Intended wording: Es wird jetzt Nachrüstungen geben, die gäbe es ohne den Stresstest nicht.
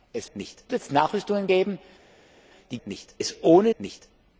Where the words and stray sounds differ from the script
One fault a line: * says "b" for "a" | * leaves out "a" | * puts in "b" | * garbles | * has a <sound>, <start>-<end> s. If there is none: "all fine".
* says "nicht" for "wird"
* says "nicht" for "gäbe"
* leaves out "den Stresstest"